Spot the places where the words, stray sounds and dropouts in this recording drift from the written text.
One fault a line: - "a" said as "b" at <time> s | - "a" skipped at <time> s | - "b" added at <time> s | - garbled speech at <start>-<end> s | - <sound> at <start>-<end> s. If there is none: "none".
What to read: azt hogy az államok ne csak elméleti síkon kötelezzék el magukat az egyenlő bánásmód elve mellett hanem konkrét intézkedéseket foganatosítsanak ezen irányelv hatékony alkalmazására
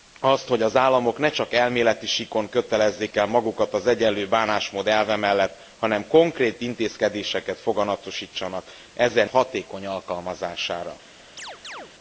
- "irányelv" skipped at 9.3 s
- chirp at 11.4-11.9 s